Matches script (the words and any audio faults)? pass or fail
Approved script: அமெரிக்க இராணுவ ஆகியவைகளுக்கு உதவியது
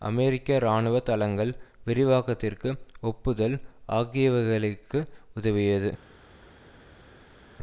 fail